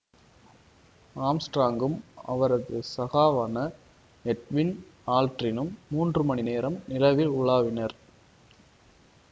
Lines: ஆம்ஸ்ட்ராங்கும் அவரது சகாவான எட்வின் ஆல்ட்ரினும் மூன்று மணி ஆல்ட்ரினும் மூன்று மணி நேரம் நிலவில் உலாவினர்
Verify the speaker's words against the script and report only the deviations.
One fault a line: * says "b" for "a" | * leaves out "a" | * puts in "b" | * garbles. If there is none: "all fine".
* leaves out "ஆல்ட்ரினும் மூன்று மணி"